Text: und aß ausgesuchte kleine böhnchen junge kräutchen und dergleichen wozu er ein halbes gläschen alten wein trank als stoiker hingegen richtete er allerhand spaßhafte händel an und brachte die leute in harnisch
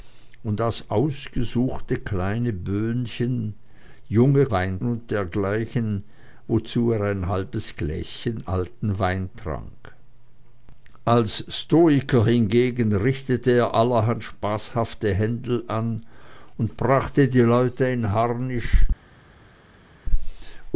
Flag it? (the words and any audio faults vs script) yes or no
yes